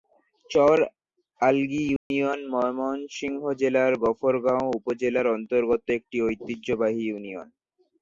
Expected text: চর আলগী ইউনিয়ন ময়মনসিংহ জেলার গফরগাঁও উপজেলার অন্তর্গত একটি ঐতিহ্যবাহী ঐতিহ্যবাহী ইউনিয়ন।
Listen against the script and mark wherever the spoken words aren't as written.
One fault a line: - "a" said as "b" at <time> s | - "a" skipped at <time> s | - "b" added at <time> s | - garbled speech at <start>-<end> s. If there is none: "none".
- "ঐতিহ্যবাহী" skipped at 7.0 s